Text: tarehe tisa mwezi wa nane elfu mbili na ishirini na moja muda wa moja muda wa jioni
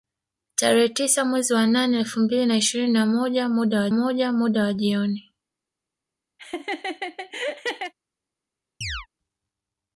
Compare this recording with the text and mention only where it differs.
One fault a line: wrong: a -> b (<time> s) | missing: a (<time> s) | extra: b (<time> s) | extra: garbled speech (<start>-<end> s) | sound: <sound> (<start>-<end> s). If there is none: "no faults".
sound: laugh (6.4-7.9 s)
sound: chirp (8.8-9.1 s)